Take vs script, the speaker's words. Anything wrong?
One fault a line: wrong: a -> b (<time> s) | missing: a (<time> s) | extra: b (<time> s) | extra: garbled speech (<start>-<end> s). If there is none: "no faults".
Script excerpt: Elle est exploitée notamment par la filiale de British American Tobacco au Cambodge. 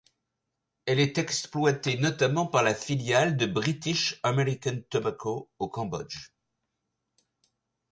no faults